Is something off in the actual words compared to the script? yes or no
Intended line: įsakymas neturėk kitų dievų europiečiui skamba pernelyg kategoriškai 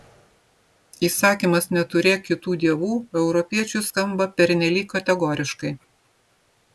no